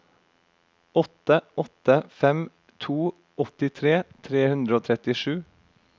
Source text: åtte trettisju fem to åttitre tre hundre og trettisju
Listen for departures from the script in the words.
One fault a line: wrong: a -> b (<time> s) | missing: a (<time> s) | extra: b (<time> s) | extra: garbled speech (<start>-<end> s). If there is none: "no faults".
wrong: trettisju -> åtte (1.6 s)